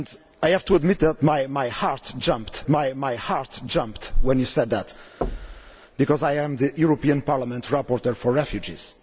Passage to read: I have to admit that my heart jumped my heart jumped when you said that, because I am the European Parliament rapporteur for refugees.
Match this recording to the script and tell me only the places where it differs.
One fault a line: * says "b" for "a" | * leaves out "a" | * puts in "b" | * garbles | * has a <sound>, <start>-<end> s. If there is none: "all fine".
* has a thud, 5.2-5.8 s